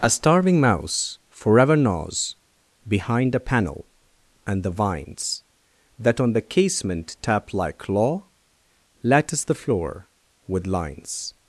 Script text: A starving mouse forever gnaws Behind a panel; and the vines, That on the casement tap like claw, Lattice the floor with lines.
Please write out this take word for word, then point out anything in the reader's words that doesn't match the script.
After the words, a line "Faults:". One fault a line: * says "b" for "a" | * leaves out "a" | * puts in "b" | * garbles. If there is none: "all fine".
A starving mouse forever gnaws Behind a panel; and the vines, That on the casement tap like claw, Lattice the floor with lines.
Faults:
all fine